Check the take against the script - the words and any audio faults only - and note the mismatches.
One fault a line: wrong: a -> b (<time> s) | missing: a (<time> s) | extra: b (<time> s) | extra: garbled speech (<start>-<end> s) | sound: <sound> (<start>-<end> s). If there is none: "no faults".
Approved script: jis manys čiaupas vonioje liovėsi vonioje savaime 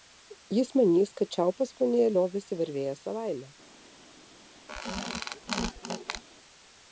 extra: kad (1.2 s)
wrong: vonioje -> varvėjęs (2.6 s)
sound: squeak (4.7-6.2 s)